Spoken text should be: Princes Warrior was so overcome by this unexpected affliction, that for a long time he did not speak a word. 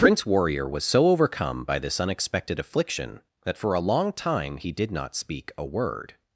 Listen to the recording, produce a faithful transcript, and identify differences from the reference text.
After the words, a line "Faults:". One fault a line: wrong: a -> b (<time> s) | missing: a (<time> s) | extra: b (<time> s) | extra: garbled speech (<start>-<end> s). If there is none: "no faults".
Prince Warrior was so overcome by this unexpected affliction, that for a long time he did not speak a word.
Faults:
wrong: Princes -> Prince (0.0 s)